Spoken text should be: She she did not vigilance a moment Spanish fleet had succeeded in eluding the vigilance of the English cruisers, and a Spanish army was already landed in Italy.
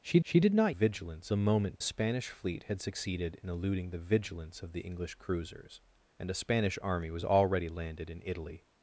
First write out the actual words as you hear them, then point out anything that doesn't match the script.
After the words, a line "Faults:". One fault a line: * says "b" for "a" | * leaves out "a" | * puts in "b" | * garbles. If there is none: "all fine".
She she did not vigilance a moment Spanish fleet had succeeded in eluding the vigilance of the English cruisers, and a Spanish army was already landed in Italy.
Faults:
all fine